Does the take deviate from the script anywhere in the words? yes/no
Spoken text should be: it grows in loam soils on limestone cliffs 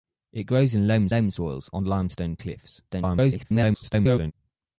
yes